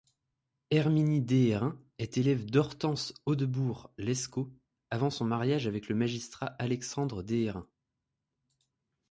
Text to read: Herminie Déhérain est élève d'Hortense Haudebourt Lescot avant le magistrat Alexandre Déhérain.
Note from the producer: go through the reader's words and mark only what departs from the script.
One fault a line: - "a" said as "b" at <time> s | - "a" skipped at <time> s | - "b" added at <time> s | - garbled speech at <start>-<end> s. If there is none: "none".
- "son mariage avec" added at 5.1 s